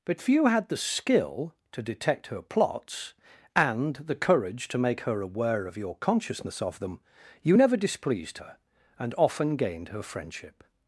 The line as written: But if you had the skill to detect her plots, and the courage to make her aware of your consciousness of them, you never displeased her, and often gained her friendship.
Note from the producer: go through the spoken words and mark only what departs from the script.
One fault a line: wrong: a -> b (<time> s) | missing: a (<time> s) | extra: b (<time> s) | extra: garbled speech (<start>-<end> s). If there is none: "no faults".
wrong: if you -> few (0.2 s)